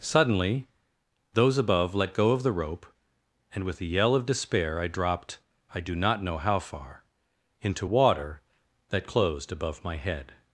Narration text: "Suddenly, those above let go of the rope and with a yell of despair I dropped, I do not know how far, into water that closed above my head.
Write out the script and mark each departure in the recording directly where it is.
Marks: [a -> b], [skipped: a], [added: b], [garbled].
"Suddenly, those above let go of the rope and with a yell of despair I dropped, I do not know how far, into water that closed above my head.